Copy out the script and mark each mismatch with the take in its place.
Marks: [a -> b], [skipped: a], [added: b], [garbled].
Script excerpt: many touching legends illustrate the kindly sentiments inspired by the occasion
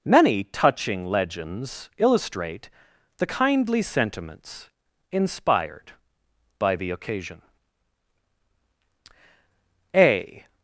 many touching legends illustrate the kindly sentiments inspired by the occasion [added: a]